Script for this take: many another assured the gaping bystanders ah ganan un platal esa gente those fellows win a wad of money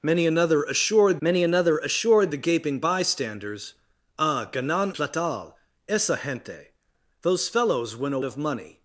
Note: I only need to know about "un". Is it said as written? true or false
false